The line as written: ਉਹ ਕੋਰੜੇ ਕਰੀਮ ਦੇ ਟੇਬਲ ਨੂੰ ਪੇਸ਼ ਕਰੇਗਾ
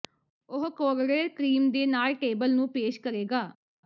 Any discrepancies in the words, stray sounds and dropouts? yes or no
yes